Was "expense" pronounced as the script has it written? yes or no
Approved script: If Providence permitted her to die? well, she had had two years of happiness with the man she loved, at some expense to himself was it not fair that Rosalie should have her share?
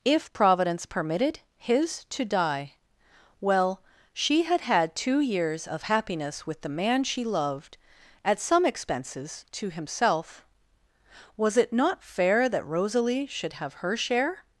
no